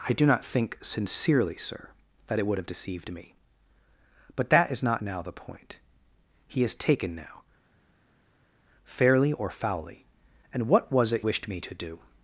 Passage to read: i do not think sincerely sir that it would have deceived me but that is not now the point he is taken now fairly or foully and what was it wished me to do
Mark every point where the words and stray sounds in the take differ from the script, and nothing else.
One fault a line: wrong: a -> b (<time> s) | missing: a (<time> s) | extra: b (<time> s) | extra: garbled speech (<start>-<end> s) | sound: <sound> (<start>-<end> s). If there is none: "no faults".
no faults